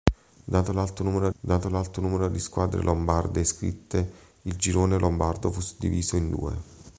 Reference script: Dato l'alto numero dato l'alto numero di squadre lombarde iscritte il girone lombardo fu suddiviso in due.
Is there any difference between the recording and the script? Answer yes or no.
no